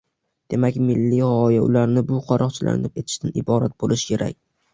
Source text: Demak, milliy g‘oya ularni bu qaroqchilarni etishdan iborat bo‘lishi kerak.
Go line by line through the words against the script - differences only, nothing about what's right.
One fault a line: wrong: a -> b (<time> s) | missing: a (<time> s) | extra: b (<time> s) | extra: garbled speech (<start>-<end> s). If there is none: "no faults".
no faults